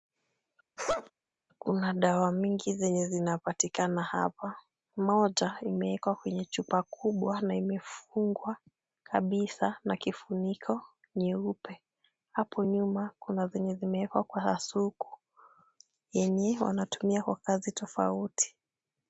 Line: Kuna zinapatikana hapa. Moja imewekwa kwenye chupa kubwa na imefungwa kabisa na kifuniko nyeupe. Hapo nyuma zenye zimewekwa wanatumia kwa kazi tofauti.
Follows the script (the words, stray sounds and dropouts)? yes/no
no